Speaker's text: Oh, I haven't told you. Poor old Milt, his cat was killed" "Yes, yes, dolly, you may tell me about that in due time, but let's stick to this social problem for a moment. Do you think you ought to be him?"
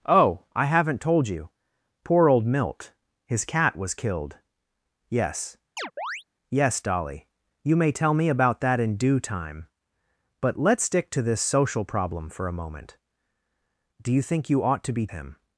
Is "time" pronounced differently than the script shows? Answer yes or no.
no